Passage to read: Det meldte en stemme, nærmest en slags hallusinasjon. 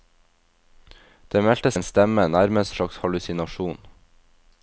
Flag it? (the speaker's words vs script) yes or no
no